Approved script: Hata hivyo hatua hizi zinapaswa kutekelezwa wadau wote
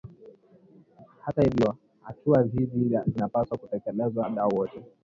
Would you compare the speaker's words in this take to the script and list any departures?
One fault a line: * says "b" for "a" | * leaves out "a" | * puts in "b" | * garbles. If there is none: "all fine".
all fine